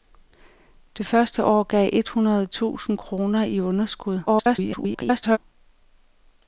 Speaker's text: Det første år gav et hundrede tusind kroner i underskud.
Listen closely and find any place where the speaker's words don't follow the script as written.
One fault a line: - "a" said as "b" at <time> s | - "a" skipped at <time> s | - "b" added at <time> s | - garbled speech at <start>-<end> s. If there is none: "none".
- garbled speech at 4.3-5.4 s